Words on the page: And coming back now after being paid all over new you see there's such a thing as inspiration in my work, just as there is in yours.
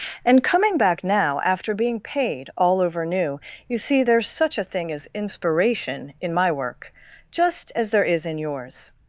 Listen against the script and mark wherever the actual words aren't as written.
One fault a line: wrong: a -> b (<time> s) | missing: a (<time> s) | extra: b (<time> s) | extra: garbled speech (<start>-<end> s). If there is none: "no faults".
no faults